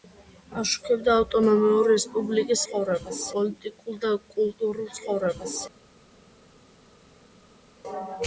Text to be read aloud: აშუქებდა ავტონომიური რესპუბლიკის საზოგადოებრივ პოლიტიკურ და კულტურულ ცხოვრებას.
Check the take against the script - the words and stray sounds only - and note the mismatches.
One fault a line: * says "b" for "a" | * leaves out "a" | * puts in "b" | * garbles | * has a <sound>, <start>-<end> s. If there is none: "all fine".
* says "ცხოვრებას" for "საზოგადოებრივ"